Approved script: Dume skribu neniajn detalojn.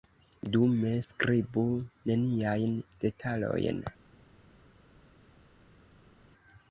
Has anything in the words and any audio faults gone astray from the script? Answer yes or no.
no